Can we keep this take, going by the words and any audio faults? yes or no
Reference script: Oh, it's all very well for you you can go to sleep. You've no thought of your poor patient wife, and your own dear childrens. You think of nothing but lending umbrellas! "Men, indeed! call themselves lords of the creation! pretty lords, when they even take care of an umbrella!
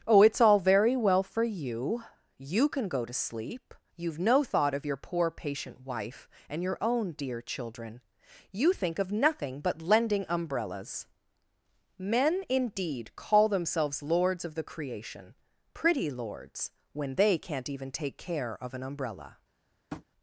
no